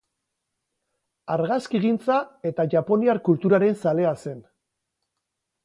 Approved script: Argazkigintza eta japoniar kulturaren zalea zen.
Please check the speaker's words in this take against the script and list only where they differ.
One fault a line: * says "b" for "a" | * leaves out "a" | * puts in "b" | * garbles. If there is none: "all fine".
all fine